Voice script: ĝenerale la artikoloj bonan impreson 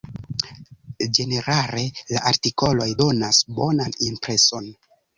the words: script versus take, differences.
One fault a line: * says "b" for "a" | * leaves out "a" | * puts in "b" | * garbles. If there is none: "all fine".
* puts in "donas"